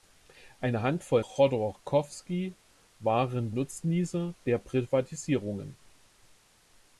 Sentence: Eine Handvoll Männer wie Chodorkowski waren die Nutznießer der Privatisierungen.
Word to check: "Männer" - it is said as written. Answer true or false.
false